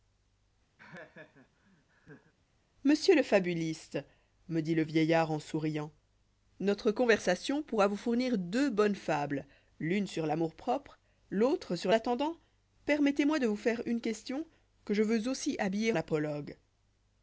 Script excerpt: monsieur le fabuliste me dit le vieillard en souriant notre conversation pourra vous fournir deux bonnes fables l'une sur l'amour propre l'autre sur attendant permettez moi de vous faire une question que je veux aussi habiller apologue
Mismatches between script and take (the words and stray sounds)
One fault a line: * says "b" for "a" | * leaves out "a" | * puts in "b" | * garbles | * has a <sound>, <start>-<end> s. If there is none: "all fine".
* has a laugh, 0.8-2.3 s